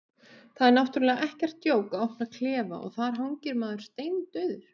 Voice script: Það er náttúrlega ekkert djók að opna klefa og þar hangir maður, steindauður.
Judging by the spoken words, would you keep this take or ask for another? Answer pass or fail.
pass